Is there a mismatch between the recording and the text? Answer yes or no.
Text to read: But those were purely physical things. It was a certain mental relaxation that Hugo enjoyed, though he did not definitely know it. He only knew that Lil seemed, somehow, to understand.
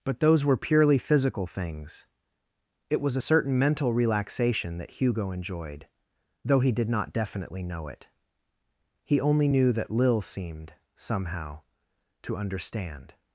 no